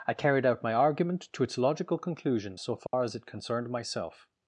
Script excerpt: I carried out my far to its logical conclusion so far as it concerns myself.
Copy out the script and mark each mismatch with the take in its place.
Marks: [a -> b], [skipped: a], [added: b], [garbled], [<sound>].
I carried out my [far -> argument] to its logical conclusion so far [dropout] as it [concerns -> concerned] myself.